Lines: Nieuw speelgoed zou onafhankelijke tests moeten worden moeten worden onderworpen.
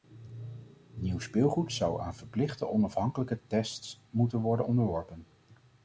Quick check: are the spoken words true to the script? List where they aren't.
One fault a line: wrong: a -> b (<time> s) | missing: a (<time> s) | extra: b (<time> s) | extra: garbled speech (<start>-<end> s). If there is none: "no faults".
extra: aan verplichte (2.0 s)
missing: moeten worden (4.7 s)